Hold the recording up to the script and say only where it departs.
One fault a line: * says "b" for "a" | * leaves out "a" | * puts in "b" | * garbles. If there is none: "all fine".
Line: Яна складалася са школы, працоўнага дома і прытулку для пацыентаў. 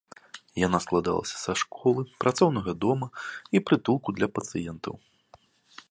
all fine